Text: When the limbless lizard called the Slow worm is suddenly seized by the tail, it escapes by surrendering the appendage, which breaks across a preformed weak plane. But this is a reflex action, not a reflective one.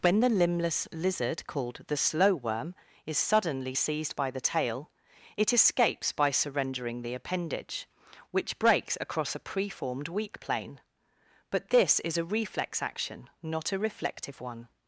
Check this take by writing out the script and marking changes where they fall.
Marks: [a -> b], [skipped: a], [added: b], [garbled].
When the limbless lizard called the Slow worm is suddenly seized by the tail, it escapes by surrendering the appendage, which breaks across a preformed weak plane. But this is a reflex action, not a reflective one.